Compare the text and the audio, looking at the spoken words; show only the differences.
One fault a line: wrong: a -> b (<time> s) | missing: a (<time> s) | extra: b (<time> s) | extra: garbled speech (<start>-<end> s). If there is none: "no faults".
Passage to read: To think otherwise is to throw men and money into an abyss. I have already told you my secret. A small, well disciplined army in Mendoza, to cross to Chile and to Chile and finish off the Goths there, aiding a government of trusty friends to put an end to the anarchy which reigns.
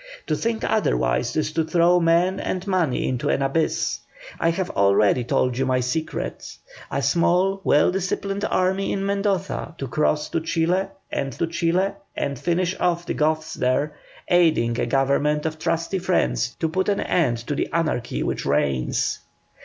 no faults